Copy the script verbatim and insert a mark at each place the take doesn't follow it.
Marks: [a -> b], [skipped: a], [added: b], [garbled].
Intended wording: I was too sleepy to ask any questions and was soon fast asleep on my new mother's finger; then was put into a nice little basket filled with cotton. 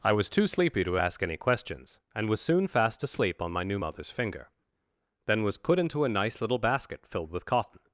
I was too sleepy to ask any questions and was soon fast asleep on my new mother's finger; then was put into a nice little basket filled with cotton.